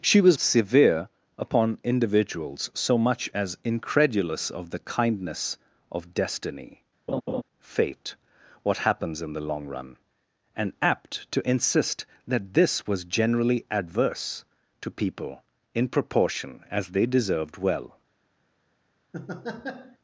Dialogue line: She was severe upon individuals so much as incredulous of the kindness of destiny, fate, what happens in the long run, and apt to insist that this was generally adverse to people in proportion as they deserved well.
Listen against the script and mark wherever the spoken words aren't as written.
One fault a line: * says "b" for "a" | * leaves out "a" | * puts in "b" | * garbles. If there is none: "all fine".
all fine